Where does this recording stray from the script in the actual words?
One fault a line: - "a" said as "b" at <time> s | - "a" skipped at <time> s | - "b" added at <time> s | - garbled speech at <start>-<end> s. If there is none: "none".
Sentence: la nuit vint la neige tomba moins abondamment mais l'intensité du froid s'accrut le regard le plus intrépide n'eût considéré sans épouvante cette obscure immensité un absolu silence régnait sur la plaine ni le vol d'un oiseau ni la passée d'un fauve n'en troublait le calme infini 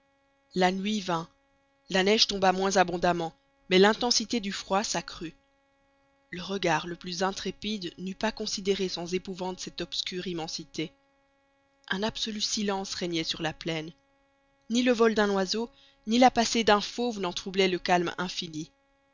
- "pas" added at 8.2 s